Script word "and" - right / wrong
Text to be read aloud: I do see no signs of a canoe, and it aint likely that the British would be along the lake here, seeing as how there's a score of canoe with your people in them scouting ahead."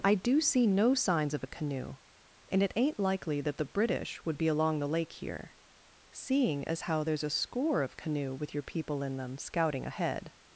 right